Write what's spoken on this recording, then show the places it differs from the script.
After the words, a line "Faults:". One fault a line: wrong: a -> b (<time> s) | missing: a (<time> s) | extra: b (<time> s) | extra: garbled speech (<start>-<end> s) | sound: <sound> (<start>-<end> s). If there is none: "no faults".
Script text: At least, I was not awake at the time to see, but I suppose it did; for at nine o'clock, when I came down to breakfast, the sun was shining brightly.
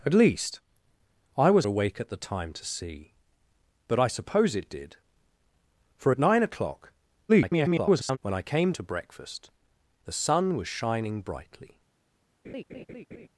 At least, I was awake at the time to see, but I suppose it did; for at nine o'clock, [garbled] when I came to breakfast, the sun was shining brightly.
Faults:
missing: not (1.7 s)
extra: garbled speech (7.3-8.2 s)
missing: down (8.7 s)
sound: laugh (12.4-13.3 s)